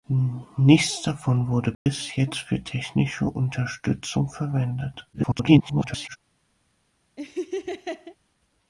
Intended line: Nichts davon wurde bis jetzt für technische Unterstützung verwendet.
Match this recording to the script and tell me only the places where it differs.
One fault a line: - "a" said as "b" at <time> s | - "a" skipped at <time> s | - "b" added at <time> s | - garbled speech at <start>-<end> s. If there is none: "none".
- garbled speech at 5.1-6.2 s